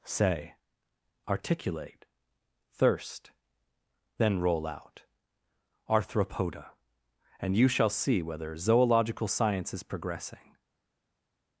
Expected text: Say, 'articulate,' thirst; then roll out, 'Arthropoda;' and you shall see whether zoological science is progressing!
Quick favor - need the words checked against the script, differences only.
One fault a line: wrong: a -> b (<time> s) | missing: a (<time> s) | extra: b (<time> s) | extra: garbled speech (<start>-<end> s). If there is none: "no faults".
no faults